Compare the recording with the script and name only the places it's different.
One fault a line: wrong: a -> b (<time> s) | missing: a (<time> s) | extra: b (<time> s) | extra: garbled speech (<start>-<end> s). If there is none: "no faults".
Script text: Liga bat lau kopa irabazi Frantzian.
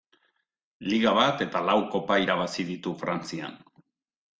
extra: eta (1.5 s)
extra: ditu (2.7 s)